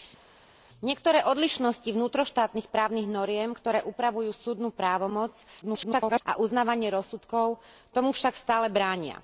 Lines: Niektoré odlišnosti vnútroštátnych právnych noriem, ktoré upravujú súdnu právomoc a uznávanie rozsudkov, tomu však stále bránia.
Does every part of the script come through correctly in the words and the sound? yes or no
no